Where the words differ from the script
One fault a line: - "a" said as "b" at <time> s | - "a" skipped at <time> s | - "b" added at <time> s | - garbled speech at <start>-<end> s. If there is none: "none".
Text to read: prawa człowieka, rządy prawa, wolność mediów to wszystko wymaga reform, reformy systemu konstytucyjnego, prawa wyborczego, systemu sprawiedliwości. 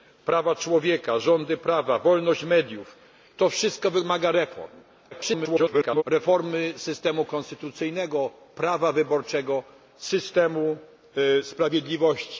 - garbled speech at 5.1-6.0 s